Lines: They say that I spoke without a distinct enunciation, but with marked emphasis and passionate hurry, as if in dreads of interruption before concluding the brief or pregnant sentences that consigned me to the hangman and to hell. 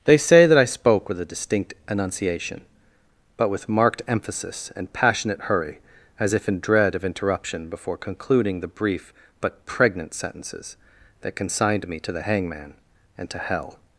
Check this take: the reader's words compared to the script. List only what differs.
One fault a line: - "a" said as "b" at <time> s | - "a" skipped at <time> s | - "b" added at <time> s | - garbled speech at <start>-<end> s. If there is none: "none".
- "without" said as "with" at 1.1 s
- "dreads" said as "dread" at 6.6 s
- "or" said as "but" at 9.4 s